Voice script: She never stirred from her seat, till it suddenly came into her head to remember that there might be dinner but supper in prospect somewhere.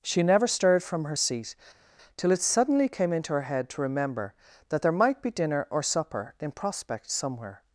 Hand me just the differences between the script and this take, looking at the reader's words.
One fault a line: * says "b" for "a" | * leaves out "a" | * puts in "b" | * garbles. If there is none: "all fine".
* says "or" for "but"